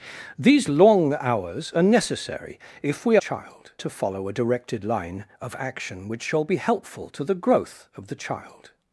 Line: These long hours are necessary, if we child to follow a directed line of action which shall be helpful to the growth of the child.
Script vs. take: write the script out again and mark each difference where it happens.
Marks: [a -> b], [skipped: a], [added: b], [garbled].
These long hours are necessary, if we child to follow a directed line of action which shall be helpful to the growth of the child.